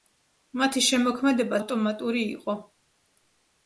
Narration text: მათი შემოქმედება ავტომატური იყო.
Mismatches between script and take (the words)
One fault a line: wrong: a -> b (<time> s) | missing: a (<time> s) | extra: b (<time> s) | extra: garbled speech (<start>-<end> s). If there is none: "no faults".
no faults